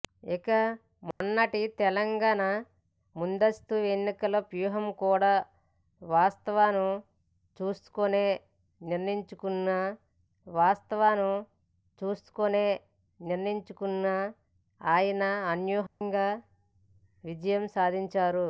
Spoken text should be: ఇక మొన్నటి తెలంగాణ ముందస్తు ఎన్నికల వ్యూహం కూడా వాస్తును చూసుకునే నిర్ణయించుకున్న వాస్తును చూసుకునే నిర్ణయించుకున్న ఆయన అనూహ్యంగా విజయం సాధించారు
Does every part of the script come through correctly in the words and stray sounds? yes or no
no